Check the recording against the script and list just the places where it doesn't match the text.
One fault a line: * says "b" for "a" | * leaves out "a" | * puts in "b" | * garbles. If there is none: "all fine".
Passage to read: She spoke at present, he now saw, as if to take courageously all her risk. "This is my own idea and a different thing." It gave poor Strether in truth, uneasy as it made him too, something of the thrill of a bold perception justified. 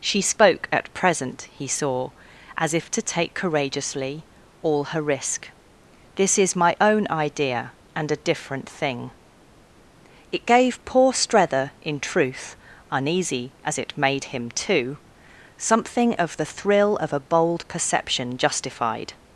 * leaves out "now"